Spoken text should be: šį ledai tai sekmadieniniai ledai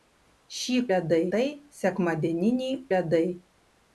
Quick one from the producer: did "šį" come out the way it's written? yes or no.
yes